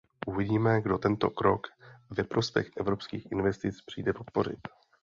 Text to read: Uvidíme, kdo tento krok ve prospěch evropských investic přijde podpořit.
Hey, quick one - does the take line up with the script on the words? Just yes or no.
yes